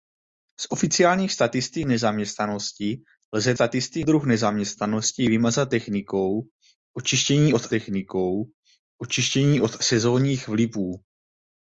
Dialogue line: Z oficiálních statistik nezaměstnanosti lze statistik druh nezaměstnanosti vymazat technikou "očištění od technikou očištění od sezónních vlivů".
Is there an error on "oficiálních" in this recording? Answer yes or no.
no